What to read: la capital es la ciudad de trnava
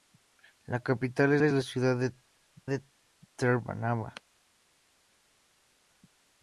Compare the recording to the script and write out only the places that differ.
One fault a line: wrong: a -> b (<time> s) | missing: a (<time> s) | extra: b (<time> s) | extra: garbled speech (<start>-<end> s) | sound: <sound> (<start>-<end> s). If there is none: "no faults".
extra: es (1.4 s)
extra: de (2.7 s)